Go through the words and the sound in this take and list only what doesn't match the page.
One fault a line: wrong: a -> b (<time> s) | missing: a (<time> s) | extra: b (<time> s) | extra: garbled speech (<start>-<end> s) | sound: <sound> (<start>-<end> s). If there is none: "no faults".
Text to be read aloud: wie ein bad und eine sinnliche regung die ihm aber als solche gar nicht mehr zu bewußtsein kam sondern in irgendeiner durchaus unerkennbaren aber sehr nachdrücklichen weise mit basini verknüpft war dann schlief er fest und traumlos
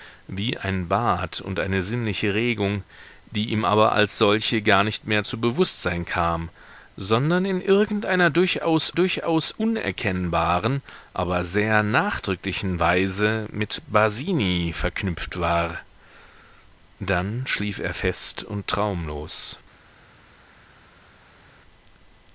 extra: durchaus (8.9 s)